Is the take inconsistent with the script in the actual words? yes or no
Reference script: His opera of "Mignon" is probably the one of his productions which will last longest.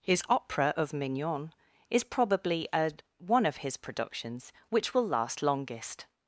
yes